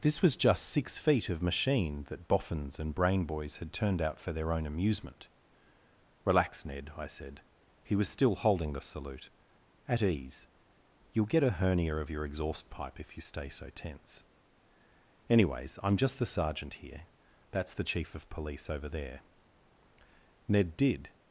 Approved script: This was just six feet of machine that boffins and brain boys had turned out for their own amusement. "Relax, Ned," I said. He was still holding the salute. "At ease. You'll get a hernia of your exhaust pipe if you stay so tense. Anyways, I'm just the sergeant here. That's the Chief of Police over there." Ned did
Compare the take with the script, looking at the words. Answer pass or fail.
pass